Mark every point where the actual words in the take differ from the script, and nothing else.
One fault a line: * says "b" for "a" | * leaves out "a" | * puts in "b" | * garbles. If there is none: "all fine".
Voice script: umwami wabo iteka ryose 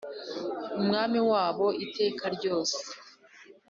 all fine